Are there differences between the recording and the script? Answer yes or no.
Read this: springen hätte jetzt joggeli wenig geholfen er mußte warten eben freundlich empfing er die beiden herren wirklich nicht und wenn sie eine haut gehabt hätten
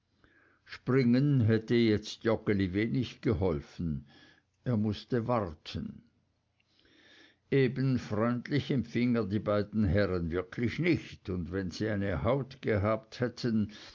no